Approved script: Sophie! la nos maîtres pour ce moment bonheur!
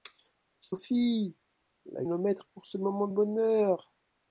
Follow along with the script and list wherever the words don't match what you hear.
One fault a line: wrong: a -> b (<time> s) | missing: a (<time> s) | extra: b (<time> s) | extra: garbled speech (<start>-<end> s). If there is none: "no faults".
no faults